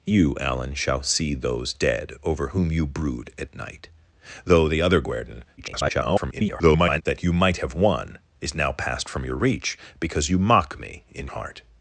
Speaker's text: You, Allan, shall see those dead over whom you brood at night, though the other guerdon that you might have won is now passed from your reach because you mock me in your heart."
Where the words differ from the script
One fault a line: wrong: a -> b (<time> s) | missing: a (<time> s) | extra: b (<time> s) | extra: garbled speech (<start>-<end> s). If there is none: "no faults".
extra: garbled speech (5.6-7.0 s)
missing: your (11.3 s)